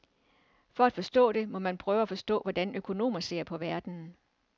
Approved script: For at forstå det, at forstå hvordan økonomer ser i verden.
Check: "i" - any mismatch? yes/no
yes